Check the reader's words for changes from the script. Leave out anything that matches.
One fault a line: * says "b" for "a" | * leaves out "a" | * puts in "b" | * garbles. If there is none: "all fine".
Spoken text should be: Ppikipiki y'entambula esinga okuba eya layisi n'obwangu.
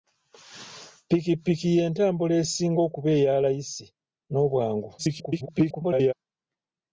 * garbles